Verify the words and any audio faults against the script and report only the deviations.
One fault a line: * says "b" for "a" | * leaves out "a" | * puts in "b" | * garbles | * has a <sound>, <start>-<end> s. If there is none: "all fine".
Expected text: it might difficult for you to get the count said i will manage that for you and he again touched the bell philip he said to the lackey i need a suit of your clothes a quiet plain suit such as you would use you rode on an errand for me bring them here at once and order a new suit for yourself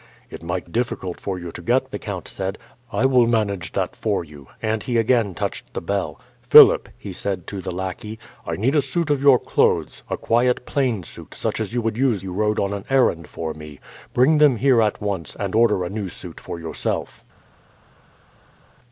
all fine